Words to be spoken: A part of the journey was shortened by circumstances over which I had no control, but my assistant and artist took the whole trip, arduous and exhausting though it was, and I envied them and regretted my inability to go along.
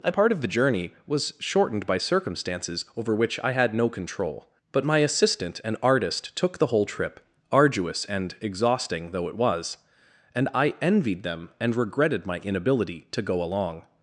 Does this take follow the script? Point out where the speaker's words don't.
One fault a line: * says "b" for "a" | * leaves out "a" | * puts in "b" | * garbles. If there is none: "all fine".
all fine